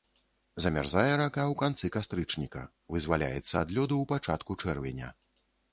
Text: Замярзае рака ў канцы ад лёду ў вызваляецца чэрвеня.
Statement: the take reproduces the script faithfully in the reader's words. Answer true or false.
false